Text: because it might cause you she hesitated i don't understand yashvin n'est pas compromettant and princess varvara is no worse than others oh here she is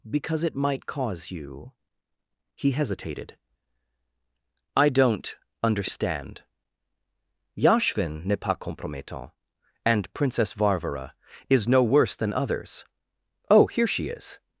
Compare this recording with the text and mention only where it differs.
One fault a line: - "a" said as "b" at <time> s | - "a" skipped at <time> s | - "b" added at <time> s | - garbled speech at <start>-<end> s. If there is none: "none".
- "she" said as "he" at 2.5 s